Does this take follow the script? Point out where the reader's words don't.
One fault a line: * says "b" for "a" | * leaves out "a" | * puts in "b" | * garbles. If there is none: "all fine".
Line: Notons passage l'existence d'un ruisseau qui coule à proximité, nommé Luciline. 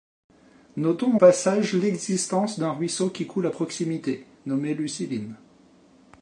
all fine